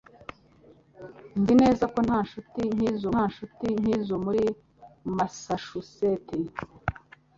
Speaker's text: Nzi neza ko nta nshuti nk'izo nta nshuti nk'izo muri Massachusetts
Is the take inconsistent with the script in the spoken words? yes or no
no